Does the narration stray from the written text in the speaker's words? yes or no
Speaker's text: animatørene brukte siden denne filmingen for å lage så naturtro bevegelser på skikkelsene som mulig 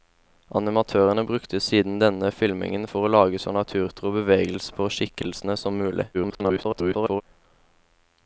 yes